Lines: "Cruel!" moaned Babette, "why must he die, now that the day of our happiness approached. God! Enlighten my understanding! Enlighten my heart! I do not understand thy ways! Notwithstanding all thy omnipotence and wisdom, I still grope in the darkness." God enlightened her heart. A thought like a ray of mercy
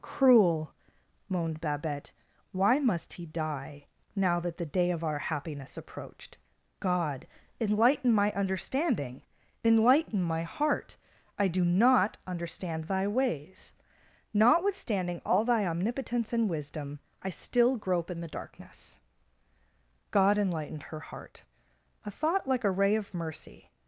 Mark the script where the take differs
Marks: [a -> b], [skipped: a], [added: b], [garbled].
"Cruel!" moaned Babette, "why must he die, now that the day of our happiness approached. God! Enlighten my understanding! Enlighten my heart! I do not understand thy ways! Notwithstanding all thy omnipotence and wisdom, I still grope in the darkness." God enlightened her heart. A thought like a ray of mercy